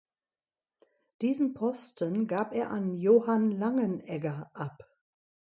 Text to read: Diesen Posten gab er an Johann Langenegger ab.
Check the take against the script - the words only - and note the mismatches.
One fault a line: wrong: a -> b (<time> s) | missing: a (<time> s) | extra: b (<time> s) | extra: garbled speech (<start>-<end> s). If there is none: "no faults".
no faults